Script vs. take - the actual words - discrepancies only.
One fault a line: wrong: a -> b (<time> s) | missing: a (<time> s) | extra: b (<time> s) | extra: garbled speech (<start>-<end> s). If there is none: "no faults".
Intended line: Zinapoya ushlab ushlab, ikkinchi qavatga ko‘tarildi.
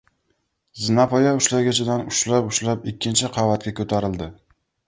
extra: ushlagichidan (1.4 s)